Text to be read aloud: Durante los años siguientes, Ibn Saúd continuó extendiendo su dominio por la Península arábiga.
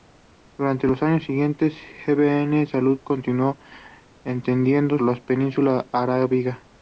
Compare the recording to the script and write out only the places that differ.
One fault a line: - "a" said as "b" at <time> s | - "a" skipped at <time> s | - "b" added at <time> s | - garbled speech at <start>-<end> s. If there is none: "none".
- "su dominio por" skipped at 5.0 s